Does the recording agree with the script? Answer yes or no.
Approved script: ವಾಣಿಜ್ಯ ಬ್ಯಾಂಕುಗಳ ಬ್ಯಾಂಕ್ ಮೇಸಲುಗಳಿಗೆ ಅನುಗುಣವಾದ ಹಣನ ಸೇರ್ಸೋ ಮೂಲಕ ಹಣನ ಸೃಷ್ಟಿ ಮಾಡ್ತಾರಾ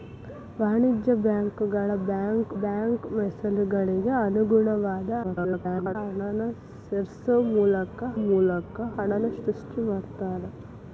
no